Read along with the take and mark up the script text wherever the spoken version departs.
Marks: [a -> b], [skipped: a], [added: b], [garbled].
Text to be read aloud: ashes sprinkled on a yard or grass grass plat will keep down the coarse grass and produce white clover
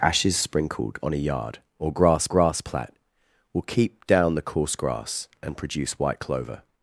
ashes sprinkled on a yard or grass grass plat will keep down the coarse grass and produce white clover